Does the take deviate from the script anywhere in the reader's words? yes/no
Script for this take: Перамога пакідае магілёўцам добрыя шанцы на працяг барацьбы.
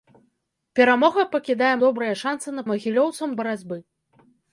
yes